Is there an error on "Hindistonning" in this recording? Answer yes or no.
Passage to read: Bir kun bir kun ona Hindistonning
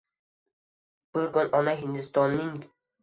no